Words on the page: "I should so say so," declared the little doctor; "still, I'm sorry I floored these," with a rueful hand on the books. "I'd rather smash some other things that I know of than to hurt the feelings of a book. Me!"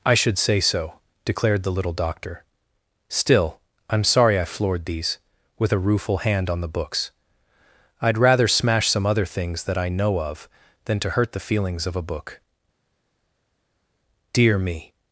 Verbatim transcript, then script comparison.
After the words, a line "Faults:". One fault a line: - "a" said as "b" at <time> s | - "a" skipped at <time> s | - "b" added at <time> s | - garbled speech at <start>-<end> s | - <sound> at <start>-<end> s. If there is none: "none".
"I should say so," declared the little doctor; "still, I'm sorry I floored these," with a rueful hand on the books. "I'd rather smash some other things that I know of than to hurt the feelings of a book. Dear me!"
Faults:
- "so" skipped at 0.4 s
- "Dear" added at 14.3 s